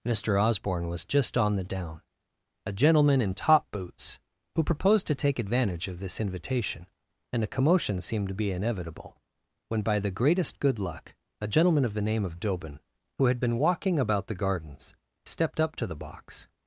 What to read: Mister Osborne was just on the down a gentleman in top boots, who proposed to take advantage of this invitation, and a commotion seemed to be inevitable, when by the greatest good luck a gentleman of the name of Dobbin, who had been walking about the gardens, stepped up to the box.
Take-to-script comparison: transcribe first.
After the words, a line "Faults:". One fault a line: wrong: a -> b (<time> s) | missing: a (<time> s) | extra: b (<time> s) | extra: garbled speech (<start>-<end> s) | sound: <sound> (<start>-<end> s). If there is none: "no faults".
Mister Osborne was just on the down a gentleman in top boots, who proposed to take advantage of this invitation, and a commotion seemed to be inevitable, when by the greatest good luck a gentleman of the name of Dobbin, who had been walking about the gardens, stepped up to the box.
Faults:
no faults